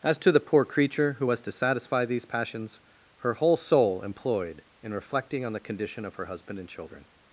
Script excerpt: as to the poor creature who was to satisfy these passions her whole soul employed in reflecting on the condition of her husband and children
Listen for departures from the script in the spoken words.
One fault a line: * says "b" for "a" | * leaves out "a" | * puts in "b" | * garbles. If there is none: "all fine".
all fine